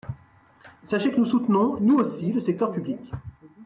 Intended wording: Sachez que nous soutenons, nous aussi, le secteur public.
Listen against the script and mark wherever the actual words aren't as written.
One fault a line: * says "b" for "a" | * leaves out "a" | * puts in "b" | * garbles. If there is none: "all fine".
all fine